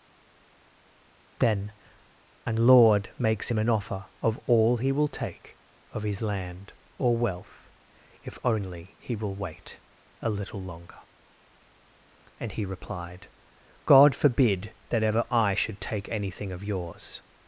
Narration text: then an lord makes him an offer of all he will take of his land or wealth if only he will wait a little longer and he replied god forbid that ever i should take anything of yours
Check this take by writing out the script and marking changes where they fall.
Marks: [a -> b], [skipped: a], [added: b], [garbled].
then an lord makes him an offer of all he will take of his land or wealth if only he will wait a little longer and he replied god forbid that ever i should take anything of yours